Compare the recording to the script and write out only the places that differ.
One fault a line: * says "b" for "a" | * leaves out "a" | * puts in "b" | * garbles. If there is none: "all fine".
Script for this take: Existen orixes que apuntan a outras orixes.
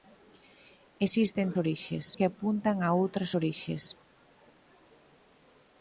all fine